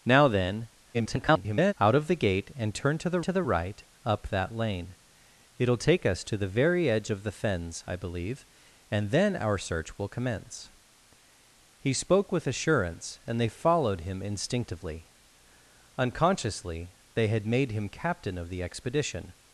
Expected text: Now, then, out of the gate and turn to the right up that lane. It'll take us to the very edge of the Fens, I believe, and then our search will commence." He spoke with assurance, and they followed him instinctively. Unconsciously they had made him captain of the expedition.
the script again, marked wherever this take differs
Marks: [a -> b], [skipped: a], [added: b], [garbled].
Now, then, [garbled] out of the gate and turn to the [added: to the] right up that lane. It'll take us to the very edge of the Fens, I believe, and then our search will commence." He spoke with assurance, and they followed him instinctively. Unconsciously they had made him captain of the expedition.